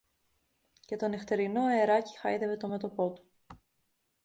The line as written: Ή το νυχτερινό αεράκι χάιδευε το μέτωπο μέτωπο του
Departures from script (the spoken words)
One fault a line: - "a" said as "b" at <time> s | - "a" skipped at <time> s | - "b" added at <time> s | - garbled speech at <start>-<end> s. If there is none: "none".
- "Ή" said as "Και" at 0.8 s
- "μέτωπο" skipped at 3.1 s